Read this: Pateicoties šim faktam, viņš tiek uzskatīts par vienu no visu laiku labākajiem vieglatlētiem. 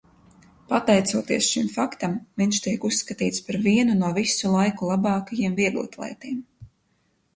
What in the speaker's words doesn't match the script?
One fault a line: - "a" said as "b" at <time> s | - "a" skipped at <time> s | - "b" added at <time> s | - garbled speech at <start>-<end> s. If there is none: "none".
none